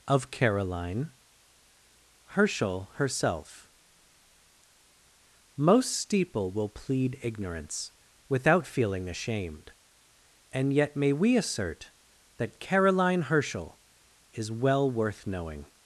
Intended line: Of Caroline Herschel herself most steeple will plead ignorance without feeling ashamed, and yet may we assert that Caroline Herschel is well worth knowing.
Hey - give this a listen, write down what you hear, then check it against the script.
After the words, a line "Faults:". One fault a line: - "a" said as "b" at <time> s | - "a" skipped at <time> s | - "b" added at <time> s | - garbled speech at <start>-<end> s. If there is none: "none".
Of Caroline Herschel herself most steeple will plead ignorance without feeling ashamed, and yet may we assert that Caroline Herschel is well worth knowing.
Faults:
none